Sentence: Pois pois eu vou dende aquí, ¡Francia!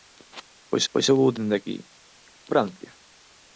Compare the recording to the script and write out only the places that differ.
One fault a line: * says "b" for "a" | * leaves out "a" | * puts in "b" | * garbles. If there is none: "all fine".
all fine